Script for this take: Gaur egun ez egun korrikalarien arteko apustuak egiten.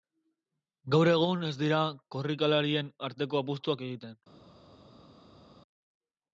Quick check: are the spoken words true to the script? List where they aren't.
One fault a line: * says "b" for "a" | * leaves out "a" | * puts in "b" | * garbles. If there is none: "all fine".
* says "dira" for "egun"